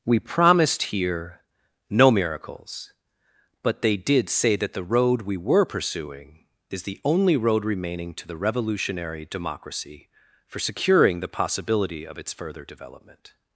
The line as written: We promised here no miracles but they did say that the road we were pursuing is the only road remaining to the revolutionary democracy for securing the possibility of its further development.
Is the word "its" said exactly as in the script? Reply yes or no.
yes